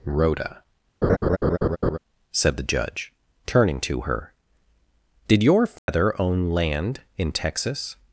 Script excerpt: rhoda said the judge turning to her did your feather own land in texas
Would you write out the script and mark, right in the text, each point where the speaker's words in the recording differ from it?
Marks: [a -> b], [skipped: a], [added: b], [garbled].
rhoda said the judge turning to her did your feather own land in texas